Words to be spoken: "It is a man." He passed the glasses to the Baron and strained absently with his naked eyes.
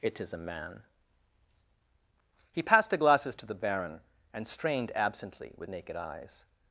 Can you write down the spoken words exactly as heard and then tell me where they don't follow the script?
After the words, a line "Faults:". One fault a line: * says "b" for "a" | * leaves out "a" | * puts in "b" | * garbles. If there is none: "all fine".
"It is a man." He passed the glasses to the Baron and strained absently with naked eyes.
Faults:
* leaves out "his"